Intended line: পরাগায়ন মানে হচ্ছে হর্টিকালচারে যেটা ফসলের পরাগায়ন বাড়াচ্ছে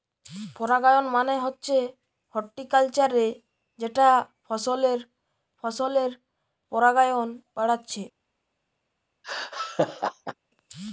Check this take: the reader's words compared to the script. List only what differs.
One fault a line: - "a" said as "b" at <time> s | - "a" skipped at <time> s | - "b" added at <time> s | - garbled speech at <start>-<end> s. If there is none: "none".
- "ফসলের" added at 5.6 s